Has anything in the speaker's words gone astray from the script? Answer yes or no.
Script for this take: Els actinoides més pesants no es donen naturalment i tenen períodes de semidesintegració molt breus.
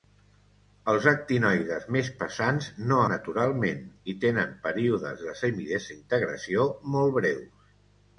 yes